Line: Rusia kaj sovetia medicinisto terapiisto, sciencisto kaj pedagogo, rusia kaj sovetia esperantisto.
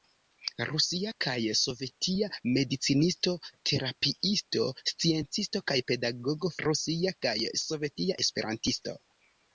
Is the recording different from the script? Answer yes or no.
no